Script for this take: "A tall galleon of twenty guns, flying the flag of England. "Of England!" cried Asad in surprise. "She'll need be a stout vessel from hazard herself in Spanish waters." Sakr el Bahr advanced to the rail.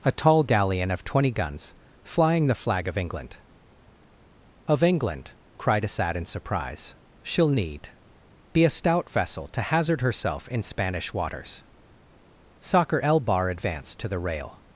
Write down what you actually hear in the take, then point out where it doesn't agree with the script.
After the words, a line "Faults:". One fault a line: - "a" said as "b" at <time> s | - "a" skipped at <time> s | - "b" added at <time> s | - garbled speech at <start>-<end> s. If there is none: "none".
"A tall galleon of twenty guns, flying the flag of England. "Of England!" cried Asad in surprise. "She'll need be a stout vessel to hazard herself in Spanish waters." Sakr el Bahr advanced to the rail.
Faults:
- "from" said as "to" at 9.5 s